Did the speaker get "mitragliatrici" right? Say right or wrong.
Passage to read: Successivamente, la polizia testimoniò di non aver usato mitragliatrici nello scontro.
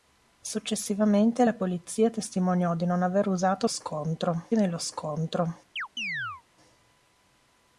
wrong